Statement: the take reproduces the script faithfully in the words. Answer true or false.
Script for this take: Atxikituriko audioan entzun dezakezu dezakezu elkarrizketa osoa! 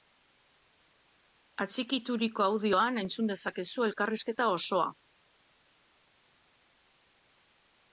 false